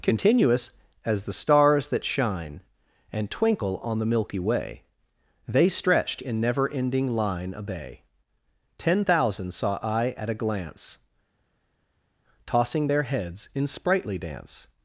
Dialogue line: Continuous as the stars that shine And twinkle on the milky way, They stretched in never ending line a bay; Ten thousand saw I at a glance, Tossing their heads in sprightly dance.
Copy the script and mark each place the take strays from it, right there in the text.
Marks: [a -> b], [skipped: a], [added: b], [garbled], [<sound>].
Continuous as the stars that shine And twinkle on the milky way, They stretched in never ending line a bay; Ten thousand saw I at a glance, Tossing their heads in sprightly dance.